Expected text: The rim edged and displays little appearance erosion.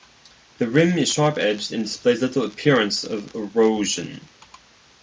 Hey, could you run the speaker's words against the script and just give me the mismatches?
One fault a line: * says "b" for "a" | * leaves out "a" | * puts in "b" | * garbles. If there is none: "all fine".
* puts in "is sharp"
* puts in "of"